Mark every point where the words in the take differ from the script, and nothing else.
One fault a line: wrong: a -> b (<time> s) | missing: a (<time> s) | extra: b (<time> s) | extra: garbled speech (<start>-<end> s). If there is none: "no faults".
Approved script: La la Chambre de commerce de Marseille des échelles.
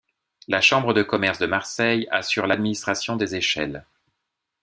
missing: la (0.6 s)
extra: assure l'administration (2.1 s)